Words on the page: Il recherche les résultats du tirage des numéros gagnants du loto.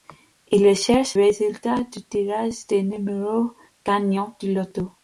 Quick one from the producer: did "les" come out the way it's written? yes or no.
no